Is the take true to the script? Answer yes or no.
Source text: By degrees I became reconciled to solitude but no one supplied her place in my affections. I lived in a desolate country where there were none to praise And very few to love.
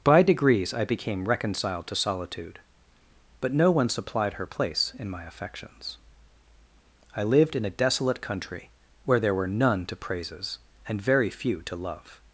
no